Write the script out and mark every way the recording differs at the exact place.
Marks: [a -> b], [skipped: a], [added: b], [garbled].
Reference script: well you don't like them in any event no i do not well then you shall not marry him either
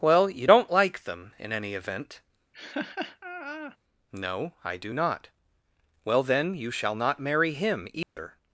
well you don't like them in any event no i do not well then you shall not marry him either